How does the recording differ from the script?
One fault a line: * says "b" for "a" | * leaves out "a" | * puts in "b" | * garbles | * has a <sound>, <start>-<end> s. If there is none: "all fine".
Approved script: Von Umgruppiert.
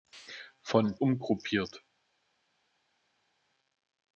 all fine